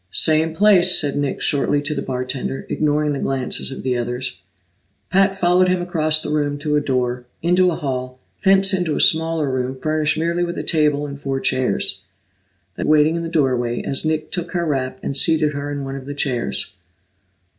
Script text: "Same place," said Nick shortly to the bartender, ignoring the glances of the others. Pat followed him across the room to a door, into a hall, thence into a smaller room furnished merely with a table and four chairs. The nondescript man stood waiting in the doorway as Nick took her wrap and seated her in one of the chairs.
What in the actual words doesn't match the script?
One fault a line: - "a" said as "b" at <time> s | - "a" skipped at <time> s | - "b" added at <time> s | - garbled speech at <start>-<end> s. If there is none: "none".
- "nondescript man stood" skipped at 12.8 s